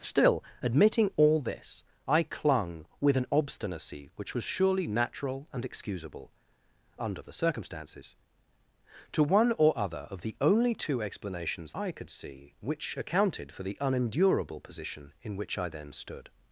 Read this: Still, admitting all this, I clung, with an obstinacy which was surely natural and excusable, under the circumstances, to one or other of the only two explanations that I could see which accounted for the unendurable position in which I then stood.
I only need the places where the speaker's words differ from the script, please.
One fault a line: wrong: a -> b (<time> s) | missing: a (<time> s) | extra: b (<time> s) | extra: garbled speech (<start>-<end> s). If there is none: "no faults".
missing: that (11.7 s)